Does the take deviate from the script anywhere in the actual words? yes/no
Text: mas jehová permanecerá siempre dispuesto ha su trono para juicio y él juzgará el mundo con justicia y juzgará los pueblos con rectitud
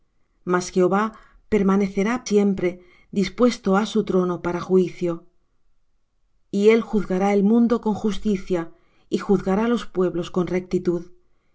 no